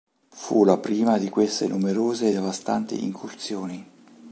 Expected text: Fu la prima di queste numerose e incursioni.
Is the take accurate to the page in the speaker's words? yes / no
no